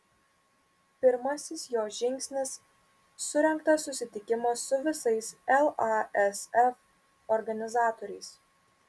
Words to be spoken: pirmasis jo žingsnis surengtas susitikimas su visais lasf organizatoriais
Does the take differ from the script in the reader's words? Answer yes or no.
no